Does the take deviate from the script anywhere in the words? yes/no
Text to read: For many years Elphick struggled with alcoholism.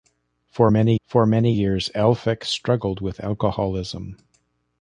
yes